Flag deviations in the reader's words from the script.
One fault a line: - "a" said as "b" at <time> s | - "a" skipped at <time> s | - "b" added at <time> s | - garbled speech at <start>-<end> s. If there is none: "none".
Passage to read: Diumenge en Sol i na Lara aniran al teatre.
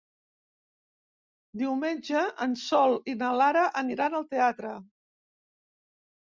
none